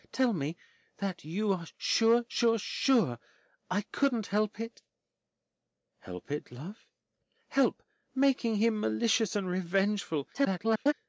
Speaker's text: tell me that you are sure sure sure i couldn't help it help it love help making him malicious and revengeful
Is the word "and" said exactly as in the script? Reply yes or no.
yes